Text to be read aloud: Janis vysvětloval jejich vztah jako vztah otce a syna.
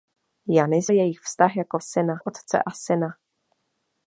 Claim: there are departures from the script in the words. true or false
true